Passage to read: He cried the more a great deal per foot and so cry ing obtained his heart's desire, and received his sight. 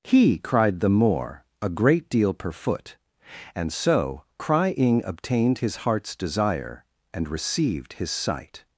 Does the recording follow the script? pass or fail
pass